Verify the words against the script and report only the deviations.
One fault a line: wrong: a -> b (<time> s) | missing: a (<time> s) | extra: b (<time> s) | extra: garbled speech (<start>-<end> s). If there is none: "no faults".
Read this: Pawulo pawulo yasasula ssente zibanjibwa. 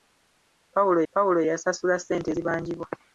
no faults